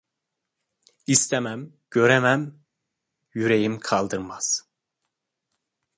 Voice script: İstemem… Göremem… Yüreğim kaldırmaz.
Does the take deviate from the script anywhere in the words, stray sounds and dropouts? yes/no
no